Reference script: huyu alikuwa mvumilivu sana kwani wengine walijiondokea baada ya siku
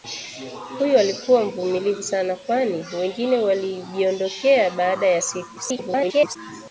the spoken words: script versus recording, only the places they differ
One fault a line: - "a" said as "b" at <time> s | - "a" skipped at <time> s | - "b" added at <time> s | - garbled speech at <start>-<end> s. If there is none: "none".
- garbled speech at 5.6-6.4 s